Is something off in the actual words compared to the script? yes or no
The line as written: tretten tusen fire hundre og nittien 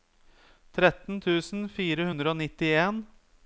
no